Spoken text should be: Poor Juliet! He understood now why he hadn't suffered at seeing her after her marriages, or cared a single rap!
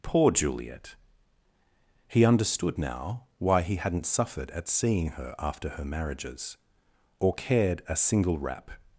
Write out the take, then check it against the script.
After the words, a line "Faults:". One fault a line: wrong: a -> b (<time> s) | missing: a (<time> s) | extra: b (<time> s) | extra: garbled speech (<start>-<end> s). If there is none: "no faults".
Poor Juliet! He understood now why he hadn't suffered at seeing her after her marriages, or cared a single rap!
Faults:
no faults